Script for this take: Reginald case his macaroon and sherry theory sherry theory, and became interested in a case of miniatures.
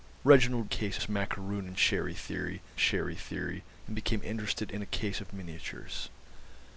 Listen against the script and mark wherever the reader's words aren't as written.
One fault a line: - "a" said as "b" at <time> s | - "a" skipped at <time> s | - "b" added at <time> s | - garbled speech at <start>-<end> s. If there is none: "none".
none